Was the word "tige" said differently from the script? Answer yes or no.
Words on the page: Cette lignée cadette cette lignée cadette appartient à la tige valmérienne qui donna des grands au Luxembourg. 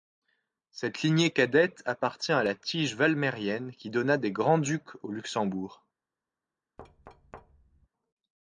no